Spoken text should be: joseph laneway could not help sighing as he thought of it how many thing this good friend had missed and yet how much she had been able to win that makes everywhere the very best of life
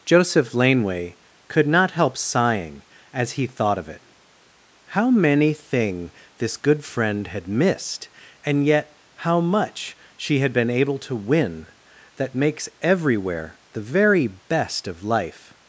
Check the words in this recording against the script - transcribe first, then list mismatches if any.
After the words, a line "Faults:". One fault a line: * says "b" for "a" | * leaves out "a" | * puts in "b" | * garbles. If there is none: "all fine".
joseph laneway could not help sighing as he thought of it how many thing this good friend had missed and yet how much she had been able to win that makes everywhere the very best of life
Faults:
all fine